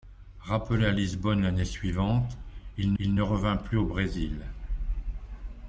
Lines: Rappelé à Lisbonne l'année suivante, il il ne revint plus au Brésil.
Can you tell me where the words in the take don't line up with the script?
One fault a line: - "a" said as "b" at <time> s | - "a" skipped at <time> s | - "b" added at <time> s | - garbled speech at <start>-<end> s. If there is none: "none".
none